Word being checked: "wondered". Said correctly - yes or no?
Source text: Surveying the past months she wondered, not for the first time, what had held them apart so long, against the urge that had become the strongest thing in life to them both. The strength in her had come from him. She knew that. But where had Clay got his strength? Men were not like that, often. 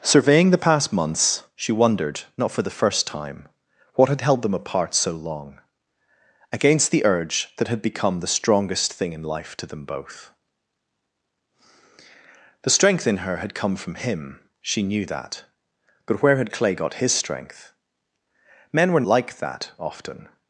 yes